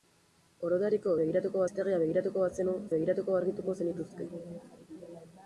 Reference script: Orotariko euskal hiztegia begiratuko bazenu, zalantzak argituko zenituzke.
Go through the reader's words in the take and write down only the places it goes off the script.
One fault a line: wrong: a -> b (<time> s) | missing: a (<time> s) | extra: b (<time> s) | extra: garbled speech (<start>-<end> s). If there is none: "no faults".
wrong: euskal -> begiratuko (1.2 s)
wrong: zalantzak -> begiratuko (3.0 s)